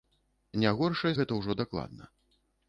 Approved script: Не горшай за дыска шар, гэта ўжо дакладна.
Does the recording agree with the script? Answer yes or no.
no